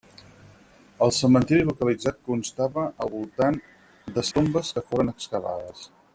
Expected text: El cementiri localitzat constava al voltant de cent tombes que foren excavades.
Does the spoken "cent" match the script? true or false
false